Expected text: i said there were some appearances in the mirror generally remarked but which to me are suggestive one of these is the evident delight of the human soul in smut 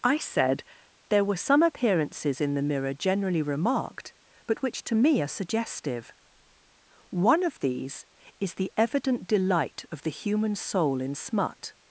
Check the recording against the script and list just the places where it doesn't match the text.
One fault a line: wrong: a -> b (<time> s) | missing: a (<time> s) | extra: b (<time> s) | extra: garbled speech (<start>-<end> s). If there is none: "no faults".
no faults